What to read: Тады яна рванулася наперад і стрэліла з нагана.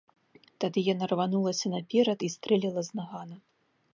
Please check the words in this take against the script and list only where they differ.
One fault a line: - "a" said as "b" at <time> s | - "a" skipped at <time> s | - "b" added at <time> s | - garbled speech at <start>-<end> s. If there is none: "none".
none